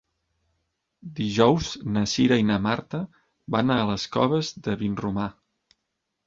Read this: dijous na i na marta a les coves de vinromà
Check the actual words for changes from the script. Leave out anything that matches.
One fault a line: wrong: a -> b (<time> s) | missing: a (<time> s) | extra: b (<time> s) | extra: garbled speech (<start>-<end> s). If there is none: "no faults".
extra: cira (2.1 s)
extra: van (3.6 s)